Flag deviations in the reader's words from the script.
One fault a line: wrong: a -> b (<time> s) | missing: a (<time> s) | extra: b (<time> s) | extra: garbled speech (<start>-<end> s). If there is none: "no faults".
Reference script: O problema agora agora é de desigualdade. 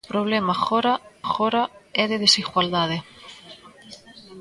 no faults